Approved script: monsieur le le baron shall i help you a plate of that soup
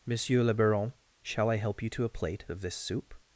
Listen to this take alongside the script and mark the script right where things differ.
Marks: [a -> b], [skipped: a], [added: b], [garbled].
monsieur le [skipped: le] baron shall i help you [added: to] a plate of [that -> this] soup